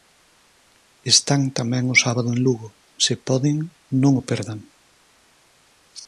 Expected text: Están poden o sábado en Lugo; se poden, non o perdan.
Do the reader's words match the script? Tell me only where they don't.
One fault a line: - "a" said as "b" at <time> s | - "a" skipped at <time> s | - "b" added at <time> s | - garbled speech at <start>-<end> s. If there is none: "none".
- "poden" said as "tamén" at 1.6 s